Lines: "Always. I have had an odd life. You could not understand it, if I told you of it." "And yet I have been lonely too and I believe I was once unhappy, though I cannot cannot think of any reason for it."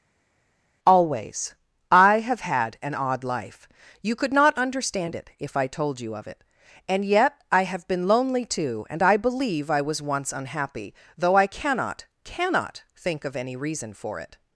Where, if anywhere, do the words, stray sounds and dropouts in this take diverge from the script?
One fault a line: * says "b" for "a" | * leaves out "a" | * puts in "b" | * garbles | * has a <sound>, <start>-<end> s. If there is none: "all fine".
all fine